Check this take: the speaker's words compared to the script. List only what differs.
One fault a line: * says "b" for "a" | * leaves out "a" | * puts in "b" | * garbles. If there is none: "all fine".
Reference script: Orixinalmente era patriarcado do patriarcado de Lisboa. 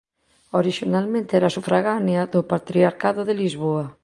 * says "sufragánea" for "patriarcado"